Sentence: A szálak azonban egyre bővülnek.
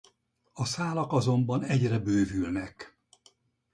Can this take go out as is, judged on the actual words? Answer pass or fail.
pass